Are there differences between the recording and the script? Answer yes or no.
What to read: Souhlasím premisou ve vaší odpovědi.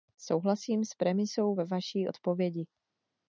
yes